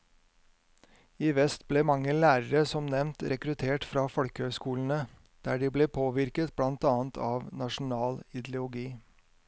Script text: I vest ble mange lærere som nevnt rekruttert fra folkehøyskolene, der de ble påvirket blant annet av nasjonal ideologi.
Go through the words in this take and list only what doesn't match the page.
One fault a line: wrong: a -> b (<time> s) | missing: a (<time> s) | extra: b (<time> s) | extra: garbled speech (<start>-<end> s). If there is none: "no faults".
no faults